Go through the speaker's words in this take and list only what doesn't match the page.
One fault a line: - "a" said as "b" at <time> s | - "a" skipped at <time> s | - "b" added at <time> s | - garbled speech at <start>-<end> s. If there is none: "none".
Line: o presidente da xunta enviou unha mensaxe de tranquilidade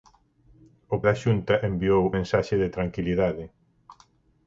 - "presidente" skipped at 1.0 s
- "unha" skipped at 2.0 s